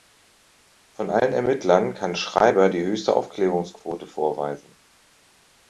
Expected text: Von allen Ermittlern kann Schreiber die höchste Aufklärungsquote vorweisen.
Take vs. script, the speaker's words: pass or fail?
pass